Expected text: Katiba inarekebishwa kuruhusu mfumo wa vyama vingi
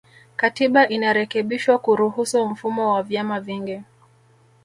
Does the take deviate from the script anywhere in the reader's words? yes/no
no